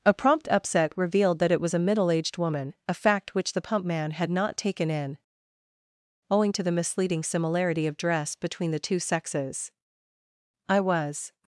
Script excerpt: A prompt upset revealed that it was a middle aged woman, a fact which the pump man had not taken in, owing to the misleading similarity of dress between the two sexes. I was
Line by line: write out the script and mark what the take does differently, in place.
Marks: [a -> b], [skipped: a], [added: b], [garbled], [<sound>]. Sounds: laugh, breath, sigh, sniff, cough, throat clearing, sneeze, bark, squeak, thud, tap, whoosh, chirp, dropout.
A prompt upset revealed that it was a middle aged woman, a fact which the pump man had not taken in, owing to the misleading similarity of dress between the two sexes. I was